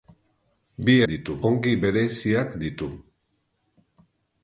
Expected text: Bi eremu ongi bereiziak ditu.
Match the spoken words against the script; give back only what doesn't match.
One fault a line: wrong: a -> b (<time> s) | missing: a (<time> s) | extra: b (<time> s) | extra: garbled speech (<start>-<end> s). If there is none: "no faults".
wrong: eremu -> ditu (1.1 s)